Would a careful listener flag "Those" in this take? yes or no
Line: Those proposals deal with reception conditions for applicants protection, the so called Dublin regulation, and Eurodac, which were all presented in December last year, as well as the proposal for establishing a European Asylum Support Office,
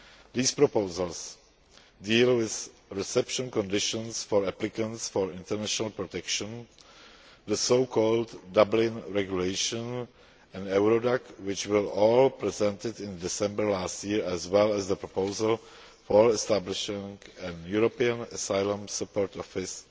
yes